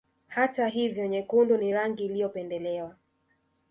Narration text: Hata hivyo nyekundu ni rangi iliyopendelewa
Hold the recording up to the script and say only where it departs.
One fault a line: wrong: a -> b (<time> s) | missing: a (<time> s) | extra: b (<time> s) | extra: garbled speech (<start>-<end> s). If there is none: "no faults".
no faults